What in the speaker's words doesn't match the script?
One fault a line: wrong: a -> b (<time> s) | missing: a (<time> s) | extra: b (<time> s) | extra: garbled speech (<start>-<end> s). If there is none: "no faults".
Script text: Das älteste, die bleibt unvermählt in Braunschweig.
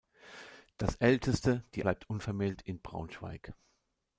no faults